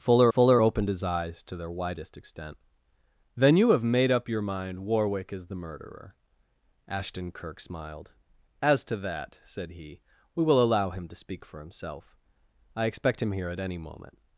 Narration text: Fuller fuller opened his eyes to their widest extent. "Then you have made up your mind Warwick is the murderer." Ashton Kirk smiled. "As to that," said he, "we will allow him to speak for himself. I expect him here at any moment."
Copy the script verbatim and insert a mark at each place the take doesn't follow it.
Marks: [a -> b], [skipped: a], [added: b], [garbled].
Fuller fuller opened his eyes to their widest extent. "Then you have made up your mind Warwick is the murderer." Ashton Kirk smiled. "As to that," said he, "we will allow him to speak for himself. I expect him here at any moment."